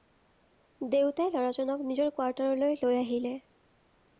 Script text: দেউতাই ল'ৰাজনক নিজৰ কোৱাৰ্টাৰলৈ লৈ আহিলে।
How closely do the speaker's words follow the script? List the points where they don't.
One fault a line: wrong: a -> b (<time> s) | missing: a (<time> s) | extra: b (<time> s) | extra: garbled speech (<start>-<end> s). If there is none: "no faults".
no faults